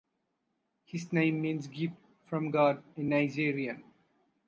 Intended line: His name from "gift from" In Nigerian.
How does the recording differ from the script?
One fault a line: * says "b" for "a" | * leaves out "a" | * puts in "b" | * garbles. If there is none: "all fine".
* says "means" for "from"
* puts in "God"